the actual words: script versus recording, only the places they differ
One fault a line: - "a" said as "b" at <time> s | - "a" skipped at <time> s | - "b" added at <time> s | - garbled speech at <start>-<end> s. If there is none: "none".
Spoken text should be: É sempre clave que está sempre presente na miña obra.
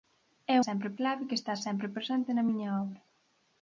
none